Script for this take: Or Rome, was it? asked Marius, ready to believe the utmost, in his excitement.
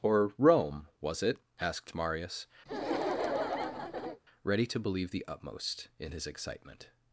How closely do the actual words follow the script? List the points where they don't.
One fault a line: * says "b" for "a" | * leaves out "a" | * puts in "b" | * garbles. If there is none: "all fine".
all fine